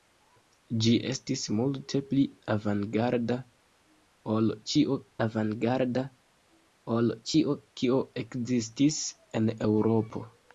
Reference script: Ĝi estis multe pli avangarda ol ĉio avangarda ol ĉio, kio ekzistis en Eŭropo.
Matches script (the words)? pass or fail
pass